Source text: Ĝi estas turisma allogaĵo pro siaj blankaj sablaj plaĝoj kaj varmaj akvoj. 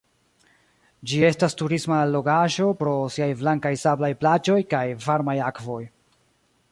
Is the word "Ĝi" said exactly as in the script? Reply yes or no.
yes